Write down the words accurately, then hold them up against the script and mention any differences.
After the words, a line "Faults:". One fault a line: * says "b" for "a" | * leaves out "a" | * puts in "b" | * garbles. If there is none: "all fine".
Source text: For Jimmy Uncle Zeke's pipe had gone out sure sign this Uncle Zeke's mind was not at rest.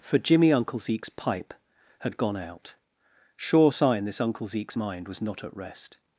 For Jimmy Uncle Zeke's pipe had gone out sure sign this Uncle Zeke's mind was not at rest.
Faults:
all fine